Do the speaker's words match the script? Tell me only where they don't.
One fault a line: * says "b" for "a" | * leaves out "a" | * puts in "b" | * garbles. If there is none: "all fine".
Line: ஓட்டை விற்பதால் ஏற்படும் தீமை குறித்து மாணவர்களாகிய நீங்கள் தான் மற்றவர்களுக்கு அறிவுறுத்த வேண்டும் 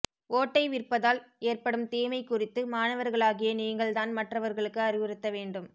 all fine